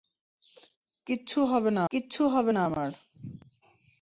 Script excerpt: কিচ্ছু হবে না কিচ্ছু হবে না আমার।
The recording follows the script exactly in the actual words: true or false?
true